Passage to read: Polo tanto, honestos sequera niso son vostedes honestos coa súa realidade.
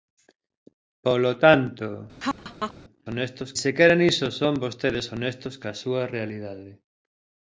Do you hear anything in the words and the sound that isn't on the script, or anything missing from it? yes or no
yes